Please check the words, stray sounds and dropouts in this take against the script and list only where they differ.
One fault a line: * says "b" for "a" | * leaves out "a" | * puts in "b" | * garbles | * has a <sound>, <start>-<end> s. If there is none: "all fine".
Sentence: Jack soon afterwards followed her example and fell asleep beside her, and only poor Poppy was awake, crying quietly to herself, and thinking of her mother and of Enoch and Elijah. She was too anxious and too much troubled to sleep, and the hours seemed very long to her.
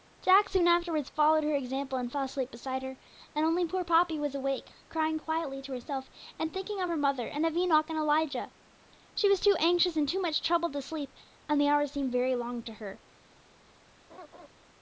* has a laugh, 14.1-14.5 s